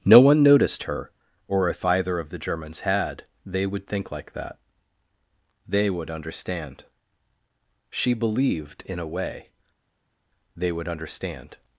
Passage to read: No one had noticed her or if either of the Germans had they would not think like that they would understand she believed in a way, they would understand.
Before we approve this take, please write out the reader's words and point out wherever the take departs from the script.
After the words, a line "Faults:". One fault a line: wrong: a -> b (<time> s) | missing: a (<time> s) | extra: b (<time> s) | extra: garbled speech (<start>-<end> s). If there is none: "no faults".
No one noticed her or if either of the Germans had they would think like that they would understand she believed in a way, they would understand.
Faults:
missing: had (0.4 s)
missing: not (3.9 s)